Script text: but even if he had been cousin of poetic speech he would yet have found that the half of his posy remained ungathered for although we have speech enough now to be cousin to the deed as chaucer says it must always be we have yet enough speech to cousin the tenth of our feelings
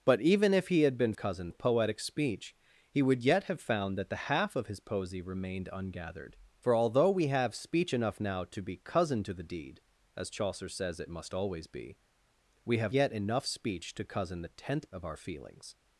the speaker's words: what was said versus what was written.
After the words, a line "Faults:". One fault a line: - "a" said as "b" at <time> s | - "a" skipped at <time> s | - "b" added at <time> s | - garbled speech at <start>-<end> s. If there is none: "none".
but even if he had been cousin of poetic speech he would yet have found that the half of his posy remained ungathered for although we have speech enough now to be cousin to the deed as chaucer says it must always be we have yet enough speech to cousin the tenth of our feelings
Faults:
none